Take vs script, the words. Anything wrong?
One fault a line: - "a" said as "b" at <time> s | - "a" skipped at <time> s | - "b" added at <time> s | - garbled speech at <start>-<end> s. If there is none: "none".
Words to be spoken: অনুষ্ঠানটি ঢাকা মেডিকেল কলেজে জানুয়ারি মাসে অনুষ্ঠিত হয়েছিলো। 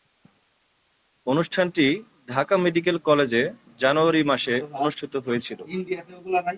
none